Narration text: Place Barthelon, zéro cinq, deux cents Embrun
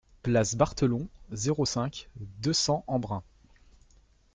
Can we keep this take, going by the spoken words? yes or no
yes